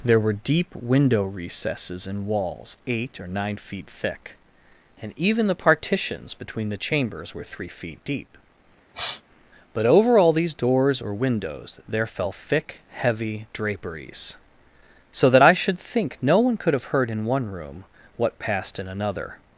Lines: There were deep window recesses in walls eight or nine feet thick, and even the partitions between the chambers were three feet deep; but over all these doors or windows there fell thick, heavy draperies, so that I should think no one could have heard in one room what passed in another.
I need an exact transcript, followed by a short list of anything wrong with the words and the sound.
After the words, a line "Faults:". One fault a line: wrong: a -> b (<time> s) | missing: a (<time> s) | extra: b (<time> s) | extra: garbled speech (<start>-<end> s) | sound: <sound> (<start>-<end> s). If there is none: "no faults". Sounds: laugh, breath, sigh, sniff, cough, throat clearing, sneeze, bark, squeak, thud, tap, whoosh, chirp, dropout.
There were deep window recesses in walls eight or nine feet thick, and even the partitions between the chambers were three feet deep; but over all these doors or windows there fell thick, heavy draperies, so that I should think no one could have heard in one room what passed in another.
Faults:
sound: sniff (8.9-9.2 s)